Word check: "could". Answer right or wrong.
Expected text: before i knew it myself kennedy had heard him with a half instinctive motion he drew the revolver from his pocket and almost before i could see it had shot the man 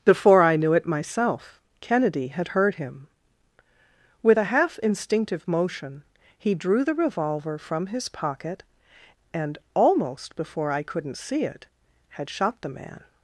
wrong